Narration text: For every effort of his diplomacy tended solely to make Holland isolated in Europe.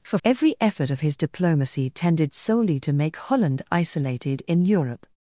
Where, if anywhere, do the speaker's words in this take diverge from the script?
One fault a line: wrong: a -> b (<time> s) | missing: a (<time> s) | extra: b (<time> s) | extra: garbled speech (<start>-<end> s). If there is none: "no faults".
no faults